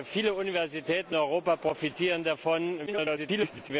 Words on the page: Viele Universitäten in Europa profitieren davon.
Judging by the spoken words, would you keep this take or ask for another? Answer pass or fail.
fail